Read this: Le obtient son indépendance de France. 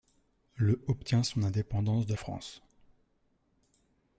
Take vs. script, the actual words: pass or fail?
pass